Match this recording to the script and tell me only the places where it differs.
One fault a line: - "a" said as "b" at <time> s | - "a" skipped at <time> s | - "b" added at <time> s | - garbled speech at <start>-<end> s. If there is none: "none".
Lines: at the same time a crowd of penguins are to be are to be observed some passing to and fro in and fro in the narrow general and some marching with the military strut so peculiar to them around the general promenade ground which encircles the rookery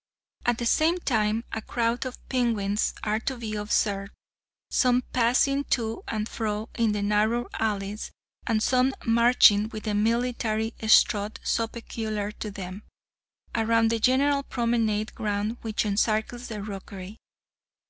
- "are to be" skipped at 3.5 s
- "and fro in" skipped at 6.9 s
- "general" said as "alleys" at 7.6 s